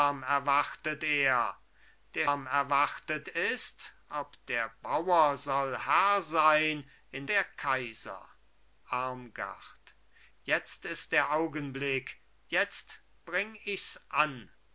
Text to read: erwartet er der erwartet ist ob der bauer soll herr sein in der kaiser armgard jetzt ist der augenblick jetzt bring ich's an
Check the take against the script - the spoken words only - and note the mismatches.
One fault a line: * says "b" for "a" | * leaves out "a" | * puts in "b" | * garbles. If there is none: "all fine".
all fine